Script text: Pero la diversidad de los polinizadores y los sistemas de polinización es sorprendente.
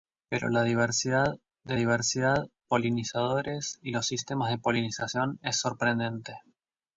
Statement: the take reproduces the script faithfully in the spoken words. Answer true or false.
false